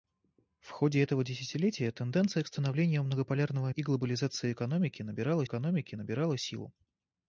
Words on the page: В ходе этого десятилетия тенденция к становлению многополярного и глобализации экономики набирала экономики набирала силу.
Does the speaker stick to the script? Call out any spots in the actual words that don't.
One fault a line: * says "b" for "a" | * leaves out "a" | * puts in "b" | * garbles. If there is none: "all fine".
all fine